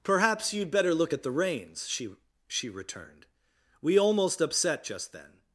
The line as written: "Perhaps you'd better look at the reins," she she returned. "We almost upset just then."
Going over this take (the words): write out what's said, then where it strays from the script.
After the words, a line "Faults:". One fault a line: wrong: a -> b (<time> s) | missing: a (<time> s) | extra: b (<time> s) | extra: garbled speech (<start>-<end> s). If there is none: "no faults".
"Perhaps you'd better look at the reins," she she returned. "We almost upset just then."
Faults:
no faults